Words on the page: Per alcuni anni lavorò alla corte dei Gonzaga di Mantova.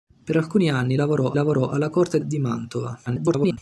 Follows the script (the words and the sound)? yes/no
no